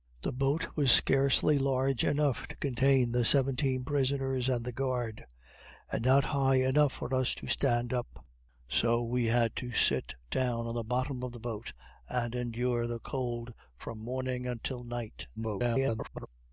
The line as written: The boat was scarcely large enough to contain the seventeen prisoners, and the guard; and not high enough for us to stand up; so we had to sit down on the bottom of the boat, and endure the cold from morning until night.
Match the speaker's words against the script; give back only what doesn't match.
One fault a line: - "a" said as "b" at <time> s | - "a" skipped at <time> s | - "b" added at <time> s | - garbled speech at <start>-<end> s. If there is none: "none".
- garbled speech at 15.4-16.3 s